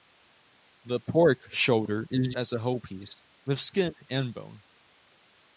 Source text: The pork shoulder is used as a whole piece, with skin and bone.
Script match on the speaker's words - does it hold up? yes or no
no